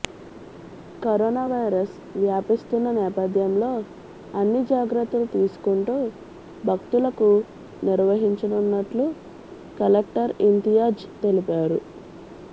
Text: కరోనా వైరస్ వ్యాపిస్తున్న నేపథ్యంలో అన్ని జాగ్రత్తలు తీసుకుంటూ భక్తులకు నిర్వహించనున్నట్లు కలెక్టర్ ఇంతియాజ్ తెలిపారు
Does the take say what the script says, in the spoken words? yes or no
yes